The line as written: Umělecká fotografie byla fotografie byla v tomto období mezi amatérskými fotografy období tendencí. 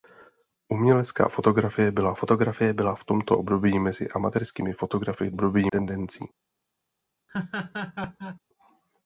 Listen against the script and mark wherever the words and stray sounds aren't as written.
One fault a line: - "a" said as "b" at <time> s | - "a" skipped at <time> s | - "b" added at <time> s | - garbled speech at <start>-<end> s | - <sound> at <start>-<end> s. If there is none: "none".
- laugh at 7.3-8.4 s